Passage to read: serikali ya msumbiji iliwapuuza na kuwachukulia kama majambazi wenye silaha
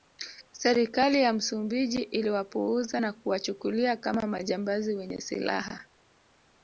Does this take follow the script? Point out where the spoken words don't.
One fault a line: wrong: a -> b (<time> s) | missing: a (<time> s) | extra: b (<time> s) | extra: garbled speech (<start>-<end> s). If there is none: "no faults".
no faults